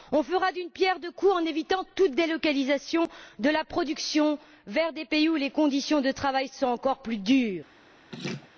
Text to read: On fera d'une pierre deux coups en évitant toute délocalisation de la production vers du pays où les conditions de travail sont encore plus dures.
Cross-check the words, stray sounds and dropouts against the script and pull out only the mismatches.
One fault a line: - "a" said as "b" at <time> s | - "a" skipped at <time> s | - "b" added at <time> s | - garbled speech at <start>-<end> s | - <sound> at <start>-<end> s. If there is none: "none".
- "du" said as "des" at 4.9 s
- laugh at 8.1-8.5 s